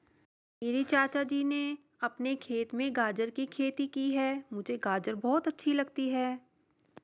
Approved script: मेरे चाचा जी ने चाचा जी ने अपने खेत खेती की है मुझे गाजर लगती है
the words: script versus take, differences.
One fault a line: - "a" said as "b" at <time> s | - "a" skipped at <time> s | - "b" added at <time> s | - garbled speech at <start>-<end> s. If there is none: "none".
- "चाचा जी ने अपने खेत" said as "अपने खेत में गाजर की" at 2.0 s
- "बहुत अच्छी" added at 5.2 s